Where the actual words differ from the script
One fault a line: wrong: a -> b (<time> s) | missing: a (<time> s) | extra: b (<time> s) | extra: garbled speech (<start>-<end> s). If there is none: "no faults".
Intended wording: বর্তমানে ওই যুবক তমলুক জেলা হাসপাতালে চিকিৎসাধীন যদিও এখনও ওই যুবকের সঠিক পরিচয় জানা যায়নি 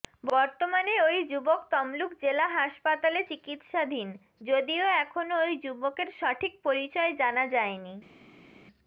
no faults